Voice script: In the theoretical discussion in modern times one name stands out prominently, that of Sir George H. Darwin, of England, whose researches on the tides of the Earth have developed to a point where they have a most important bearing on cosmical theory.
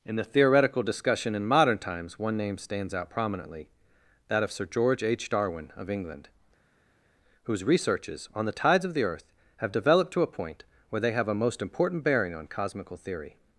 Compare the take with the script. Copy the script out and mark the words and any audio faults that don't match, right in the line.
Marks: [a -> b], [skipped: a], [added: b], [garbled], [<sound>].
In the theoretical discussion in modern times one name stands out prominently, that of Sir George H. Darwin, of England, whose researches on the tides of the Earth have developed to a point where they have a most important bearing on cosmical theory.